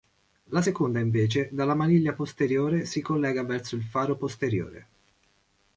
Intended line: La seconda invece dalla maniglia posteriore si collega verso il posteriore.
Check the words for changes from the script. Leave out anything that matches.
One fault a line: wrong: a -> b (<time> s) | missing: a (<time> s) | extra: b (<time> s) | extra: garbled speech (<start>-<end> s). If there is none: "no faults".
extra: faro (3.8 s)